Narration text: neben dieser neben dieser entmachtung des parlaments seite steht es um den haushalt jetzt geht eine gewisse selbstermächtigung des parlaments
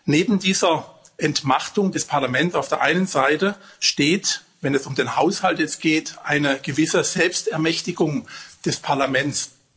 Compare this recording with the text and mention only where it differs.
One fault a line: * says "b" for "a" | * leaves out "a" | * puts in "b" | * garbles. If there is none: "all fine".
* leaves out "neben dieser"
* puts in "auf der einen"
* puts in "wenn"